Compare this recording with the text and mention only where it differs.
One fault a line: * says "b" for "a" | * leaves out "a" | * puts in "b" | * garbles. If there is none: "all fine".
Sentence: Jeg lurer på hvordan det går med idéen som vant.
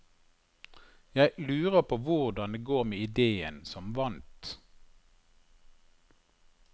all fine